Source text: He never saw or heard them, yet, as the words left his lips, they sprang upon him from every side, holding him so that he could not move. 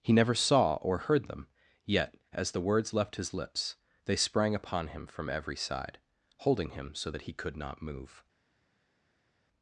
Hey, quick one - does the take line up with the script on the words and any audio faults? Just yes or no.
yes